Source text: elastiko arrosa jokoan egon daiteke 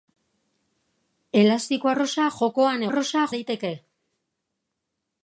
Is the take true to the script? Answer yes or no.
no